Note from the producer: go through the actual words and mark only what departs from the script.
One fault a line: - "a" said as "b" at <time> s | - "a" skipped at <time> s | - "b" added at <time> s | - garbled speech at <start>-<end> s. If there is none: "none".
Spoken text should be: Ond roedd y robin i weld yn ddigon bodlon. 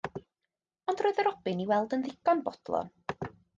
none